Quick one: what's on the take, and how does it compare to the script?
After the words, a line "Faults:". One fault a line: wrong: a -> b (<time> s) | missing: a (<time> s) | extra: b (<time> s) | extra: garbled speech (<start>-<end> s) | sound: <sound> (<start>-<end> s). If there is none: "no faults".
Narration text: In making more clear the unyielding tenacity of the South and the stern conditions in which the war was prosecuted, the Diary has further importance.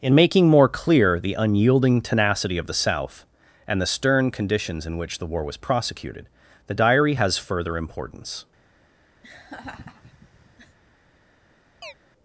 In making more clear the unyielding tenacity of the South and the stern conditions in which the war was prosecuted, the Diary has further importance.
Faults:
sound: laugh (9.2-10.8 s)
sound: chirp (11.8-11.9 s)